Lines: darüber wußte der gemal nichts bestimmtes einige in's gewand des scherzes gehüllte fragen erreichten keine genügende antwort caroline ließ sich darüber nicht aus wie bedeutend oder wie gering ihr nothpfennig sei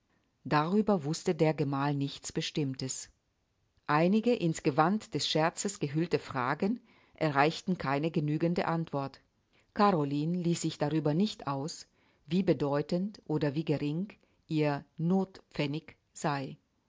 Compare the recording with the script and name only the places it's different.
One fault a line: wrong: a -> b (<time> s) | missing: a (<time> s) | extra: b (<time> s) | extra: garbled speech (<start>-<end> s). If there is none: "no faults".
no faults